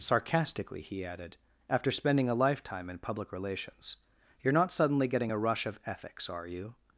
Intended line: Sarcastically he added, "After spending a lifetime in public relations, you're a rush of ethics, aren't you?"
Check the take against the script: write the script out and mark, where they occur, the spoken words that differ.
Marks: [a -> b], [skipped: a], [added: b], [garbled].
Sarcastically he added, "After spending a lifetime in public relations, you're [added: not suddenly getting] a rush of ethics, [aren't -> are] you?"